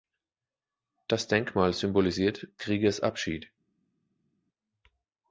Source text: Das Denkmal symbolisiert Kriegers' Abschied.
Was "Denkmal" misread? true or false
false